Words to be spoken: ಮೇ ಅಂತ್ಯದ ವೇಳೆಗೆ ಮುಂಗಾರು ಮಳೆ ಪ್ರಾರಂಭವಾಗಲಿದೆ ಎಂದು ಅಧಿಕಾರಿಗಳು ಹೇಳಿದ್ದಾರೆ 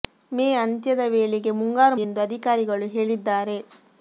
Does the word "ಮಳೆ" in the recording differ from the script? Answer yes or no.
yes